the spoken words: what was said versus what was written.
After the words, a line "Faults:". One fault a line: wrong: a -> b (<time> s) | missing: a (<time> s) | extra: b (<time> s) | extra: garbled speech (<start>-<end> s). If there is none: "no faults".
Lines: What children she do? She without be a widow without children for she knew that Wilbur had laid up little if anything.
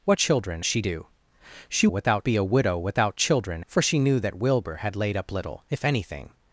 What children she do? She without be a widow without children for she knew that Wilbur had laid up little if anything.
Faults:
no faults